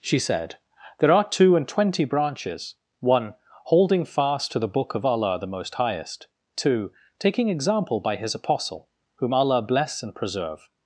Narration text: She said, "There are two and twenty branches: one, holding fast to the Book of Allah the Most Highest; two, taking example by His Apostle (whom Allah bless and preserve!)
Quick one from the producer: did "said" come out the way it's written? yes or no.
yes